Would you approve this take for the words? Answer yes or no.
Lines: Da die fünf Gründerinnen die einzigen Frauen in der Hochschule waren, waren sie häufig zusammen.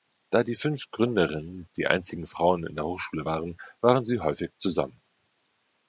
yes